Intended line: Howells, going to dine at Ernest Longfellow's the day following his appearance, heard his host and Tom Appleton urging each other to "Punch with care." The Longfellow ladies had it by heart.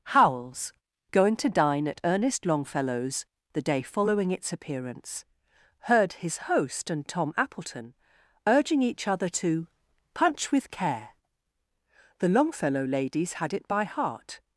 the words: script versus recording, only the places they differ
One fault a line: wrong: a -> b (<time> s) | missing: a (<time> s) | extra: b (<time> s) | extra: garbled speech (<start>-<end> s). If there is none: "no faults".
wrong: his -> its (4.3 s)